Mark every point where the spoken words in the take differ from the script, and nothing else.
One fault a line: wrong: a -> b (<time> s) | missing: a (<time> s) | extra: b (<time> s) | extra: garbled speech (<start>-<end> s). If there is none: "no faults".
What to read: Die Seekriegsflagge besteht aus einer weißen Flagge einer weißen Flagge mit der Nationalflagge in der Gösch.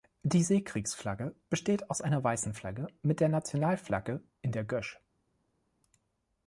missing: einer weißen Flagge (2.9 s)